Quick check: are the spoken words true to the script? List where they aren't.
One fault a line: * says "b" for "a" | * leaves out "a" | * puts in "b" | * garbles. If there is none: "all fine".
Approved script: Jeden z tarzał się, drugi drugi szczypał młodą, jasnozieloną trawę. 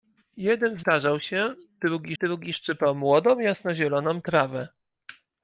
all fine